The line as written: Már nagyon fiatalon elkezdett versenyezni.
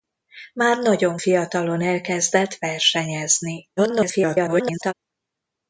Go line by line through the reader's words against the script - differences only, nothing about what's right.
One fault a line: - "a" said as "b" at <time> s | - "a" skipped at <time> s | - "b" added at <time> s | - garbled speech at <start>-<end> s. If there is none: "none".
- garbled speech at 3.8-4.9 s